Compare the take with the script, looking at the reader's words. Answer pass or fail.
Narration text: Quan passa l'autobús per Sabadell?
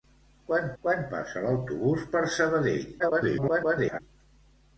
fail